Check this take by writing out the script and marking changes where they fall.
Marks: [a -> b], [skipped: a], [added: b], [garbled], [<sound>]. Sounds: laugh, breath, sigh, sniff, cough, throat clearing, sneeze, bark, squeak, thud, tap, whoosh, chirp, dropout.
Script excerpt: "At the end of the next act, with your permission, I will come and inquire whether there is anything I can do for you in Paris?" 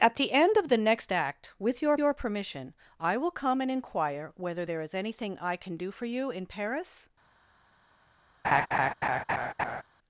"At the end of the next act, with your [added: your] permission, I will come and inquire whether there is anything I can do for you in Paris?" [laugh]